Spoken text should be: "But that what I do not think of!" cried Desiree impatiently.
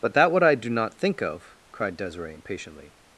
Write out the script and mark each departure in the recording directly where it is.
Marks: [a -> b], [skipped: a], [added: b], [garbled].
"But that what I do not think of!" cried Desiree impatiently.